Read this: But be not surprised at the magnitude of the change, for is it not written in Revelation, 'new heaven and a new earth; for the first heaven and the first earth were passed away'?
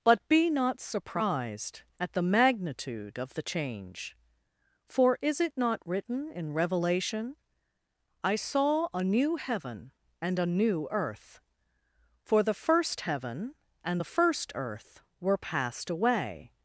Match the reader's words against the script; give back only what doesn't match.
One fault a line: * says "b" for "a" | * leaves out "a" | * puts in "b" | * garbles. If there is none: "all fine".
* puts in "I saw a"